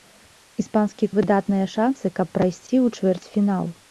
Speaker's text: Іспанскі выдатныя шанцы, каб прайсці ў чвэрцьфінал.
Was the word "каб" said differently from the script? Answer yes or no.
no